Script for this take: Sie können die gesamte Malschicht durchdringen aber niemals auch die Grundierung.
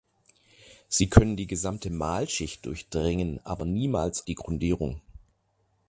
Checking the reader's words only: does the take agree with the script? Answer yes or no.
no